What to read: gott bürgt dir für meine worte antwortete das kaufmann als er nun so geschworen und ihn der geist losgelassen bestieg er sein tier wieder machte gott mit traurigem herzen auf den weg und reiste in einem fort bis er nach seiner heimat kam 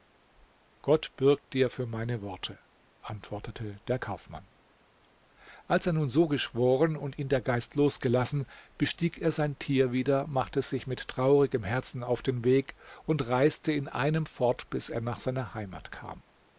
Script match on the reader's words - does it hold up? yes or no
no